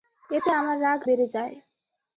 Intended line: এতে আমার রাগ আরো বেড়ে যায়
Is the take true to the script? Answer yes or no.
no